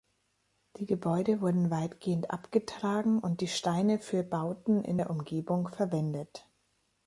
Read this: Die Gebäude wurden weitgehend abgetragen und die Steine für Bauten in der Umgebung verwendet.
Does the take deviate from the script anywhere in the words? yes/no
no